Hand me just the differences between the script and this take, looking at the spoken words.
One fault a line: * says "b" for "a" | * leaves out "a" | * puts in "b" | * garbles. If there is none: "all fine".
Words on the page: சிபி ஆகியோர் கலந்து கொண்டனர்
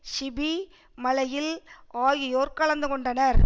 * puts in "மலையில்"